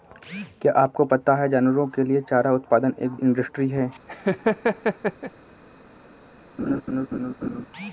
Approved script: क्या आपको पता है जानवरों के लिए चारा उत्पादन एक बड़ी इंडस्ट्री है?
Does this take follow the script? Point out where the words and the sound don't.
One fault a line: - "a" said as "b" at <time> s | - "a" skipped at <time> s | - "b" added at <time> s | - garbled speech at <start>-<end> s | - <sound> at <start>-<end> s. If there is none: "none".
- "बड़ी" skipped at 3.1 s
- laugh at 4.1-5.3 s
- laugh at 6.6-7.7 s